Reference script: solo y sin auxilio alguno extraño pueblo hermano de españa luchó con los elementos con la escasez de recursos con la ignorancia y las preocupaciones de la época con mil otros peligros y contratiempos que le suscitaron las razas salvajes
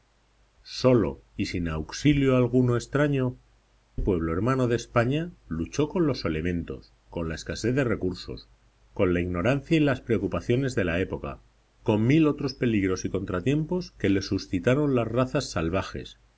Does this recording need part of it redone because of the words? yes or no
no